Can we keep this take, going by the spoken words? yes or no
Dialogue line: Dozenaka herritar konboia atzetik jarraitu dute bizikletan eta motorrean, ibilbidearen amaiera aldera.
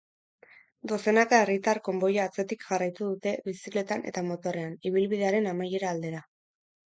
yes